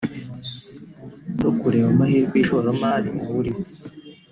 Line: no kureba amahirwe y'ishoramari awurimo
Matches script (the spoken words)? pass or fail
pass